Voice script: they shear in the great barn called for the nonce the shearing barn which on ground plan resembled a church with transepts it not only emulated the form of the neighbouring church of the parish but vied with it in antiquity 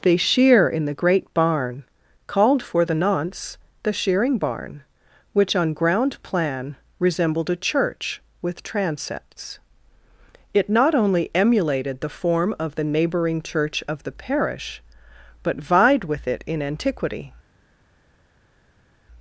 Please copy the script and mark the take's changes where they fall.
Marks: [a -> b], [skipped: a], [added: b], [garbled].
they shear in the great barn called for the nonce the shearing barn which on ground plan resembled a church with transepts it not only emulated the form of the neighbouring church of the parish but vied with it in antiquity